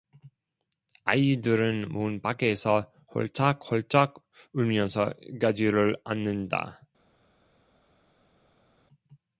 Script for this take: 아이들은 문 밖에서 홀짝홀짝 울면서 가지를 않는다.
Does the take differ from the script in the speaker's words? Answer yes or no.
no